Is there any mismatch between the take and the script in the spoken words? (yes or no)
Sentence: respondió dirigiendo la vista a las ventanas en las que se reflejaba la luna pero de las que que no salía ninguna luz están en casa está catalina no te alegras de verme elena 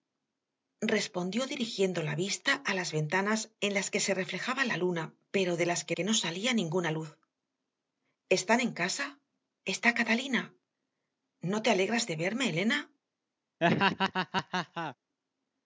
no